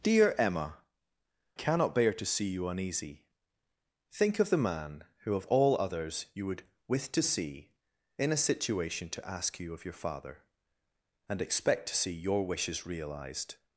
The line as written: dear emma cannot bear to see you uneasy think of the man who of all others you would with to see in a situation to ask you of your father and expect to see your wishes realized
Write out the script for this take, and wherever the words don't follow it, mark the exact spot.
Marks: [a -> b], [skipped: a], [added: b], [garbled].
dear emma cannot bear to see you uneasy think of the man who of all others you would with to see in a situation to ask you of your father and expect to see your wishes realized